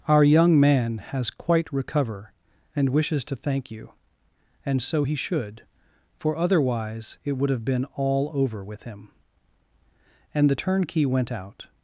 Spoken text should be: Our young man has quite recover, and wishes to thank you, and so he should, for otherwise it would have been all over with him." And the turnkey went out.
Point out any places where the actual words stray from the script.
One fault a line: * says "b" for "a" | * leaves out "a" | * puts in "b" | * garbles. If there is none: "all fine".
all fine